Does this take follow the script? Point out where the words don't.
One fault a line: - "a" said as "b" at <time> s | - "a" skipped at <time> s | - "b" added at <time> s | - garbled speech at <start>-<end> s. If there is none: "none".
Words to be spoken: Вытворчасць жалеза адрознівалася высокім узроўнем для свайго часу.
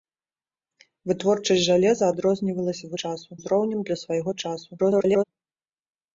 - "высокім" said as "часу" at 3.0 s
- garbled speech at 4.8-5.2 s